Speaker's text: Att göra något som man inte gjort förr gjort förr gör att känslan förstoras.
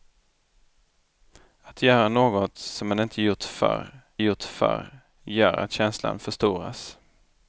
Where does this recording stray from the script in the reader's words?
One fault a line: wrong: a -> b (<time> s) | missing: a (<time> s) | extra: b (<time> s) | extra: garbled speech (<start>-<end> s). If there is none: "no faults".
no faults